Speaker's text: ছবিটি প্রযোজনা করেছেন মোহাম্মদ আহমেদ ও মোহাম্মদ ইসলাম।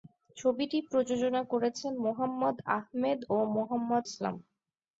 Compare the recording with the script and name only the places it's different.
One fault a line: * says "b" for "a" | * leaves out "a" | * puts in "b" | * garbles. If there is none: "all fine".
all fine